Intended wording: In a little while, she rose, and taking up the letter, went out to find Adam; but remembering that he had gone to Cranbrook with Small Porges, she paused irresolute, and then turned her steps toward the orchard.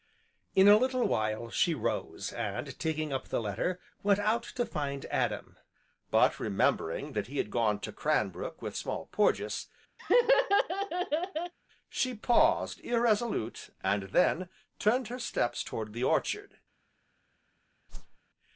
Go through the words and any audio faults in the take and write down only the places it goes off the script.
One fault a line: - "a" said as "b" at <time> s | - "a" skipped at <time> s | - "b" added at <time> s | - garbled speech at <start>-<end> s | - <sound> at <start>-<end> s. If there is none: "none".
- laugh at 10.0-11.5 s
- whoosh at 17.9-18.2 s